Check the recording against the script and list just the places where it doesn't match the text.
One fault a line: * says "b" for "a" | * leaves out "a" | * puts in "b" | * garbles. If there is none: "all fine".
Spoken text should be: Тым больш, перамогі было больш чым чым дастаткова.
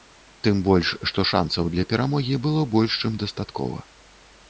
* puts in "што шанцаў для"
* leaves out "чым"